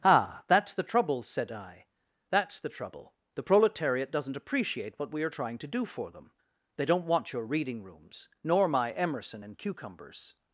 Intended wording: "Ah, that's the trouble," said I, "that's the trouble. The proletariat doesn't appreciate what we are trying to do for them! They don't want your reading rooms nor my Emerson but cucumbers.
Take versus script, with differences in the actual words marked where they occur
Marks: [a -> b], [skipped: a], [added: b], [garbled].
"Ah, that's the trouble," said I, "that's the trouble. The proletariat doesn't appreciate what we are trying to do for them! They don't want your reading rooms nor my Emerson [but -> and] cucumbers.